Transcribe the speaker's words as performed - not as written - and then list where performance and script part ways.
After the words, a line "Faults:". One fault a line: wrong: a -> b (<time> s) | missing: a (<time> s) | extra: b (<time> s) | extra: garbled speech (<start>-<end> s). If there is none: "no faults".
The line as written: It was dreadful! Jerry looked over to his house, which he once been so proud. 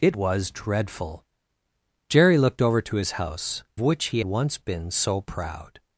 It was dreadful! Jerry looked over to his house, which he once been so proud.
Faults:
no faults